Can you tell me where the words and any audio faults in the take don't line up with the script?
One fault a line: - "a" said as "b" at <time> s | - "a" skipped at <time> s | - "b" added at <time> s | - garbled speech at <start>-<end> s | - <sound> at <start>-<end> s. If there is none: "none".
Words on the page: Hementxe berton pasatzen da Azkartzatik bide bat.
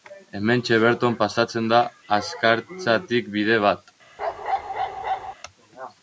- bark at 4.2-5.3 s